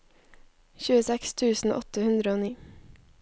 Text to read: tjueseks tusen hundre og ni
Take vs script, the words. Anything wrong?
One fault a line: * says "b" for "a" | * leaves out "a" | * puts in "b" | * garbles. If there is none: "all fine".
* puts in "åtte"